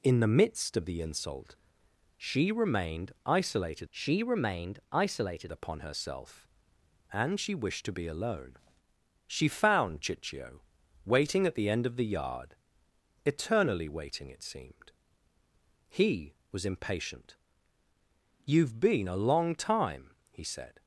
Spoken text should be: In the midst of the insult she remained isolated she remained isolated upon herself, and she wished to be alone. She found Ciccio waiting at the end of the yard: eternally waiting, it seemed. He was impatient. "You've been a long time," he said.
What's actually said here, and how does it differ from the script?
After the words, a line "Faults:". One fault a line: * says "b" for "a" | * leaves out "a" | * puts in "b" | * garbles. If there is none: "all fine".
In the midst of the insult she remained isolated she remained isolated upon herself, and she wished to be alone. She found Ciccio waiting at the end of the yard: eternally waiting, it seemed. He was impatient. "You've been a long time," he said.
Faults:
all fine